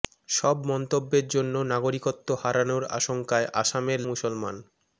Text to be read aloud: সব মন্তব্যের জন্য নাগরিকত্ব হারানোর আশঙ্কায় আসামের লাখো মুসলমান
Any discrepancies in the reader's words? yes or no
yes